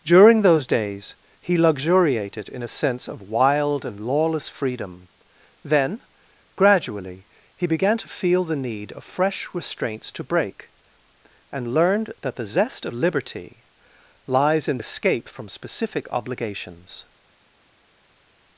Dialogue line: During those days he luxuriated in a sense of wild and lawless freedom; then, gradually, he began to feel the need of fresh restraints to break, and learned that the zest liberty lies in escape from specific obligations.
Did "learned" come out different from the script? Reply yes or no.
no